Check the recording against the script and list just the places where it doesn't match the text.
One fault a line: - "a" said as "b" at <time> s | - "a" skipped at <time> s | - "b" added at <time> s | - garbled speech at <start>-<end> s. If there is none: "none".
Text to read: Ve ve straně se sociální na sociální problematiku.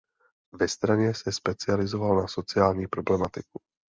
- "ve" skipped at 0.7 s
- "sociální" said as "specializoval" at 1.3 s